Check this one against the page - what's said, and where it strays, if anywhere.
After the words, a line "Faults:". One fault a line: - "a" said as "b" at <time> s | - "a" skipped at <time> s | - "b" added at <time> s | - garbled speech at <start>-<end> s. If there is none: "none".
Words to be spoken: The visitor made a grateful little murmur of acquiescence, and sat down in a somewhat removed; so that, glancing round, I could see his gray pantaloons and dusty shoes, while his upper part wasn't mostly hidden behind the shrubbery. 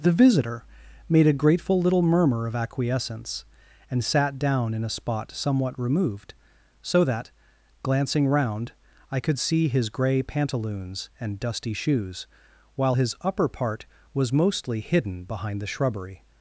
The visitor made a grateful little murmur of acquiescence, and sat down in a spot somewhat removed; so that, glancing round, I could see his gray pantaloons and dusty shoes, while his upper part was mostly hidden behind the shrubbery.
Faults:
- "spot" added at 4.9 s
- "wasn't" said as "was" at 14.1 s